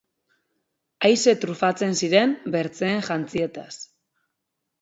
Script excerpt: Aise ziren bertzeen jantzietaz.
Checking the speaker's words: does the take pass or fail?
fail